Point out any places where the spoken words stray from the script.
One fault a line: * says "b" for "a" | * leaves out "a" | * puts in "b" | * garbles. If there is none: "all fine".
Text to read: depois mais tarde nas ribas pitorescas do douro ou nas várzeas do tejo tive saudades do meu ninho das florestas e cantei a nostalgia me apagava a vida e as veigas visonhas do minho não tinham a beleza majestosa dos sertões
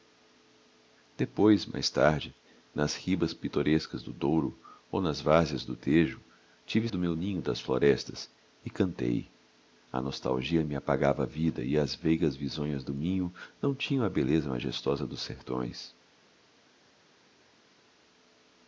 * leaves out "saudades"